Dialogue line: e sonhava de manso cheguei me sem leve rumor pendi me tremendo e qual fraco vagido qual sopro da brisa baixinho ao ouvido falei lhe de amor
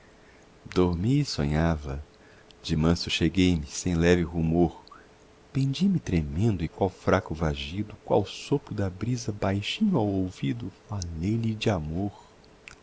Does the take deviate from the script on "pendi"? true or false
false